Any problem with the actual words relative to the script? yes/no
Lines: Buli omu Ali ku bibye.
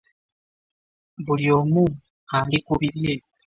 no